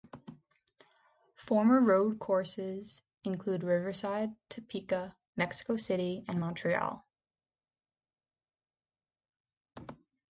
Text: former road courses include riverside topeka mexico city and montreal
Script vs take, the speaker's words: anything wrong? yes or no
no